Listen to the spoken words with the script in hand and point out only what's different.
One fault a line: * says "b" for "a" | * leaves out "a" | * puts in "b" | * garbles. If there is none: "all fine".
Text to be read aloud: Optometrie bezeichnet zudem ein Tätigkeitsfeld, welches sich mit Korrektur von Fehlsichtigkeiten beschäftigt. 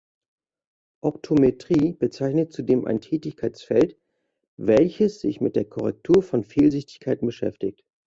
* puts in "der"